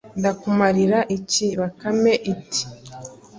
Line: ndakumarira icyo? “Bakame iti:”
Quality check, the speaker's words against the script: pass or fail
fail